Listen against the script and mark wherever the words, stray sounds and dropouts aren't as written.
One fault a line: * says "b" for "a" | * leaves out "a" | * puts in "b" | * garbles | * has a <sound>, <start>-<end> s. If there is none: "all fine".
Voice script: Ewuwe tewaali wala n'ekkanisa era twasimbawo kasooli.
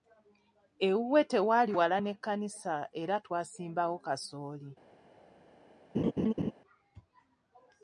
* has a laugh, 5.9-6.5 s